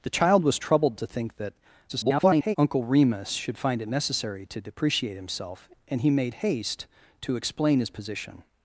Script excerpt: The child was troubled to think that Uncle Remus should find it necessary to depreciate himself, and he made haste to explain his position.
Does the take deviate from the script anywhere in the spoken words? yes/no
yes